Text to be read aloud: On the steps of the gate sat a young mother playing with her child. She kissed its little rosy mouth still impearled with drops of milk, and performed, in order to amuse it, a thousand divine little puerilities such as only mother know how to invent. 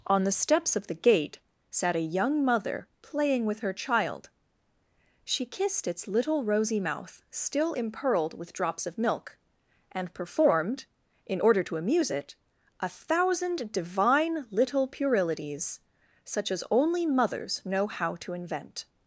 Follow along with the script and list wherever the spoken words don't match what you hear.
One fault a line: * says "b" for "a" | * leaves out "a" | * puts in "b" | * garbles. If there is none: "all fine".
* says "mothers" for "mother"